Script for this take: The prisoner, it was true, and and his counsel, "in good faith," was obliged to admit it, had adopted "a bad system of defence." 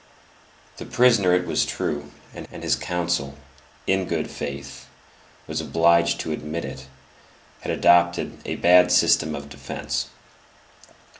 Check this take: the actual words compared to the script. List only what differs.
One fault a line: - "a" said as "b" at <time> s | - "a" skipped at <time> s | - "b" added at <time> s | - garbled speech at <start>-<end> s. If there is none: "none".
none